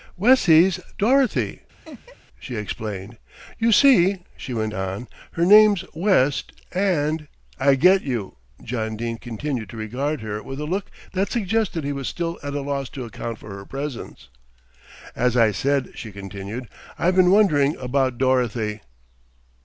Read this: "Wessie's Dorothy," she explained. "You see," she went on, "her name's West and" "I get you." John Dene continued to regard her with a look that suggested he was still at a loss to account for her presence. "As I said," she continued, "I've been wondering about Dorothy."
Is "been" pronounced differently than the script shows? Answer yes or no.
no